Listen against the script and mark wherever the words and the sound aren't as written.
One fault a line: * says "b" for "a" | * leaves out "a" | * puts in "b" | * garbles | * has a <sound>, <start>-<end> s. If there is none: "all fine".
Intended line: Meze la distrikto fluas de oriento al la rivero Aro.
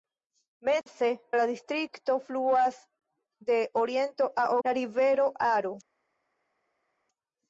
all fine